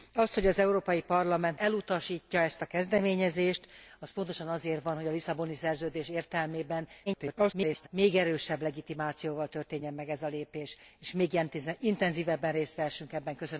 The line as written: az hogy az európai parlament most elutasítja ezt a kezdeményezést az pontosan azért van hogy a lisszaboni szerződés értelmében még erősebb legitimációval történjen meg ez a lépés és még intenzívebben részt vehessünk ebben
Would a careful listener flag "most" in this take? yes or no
yes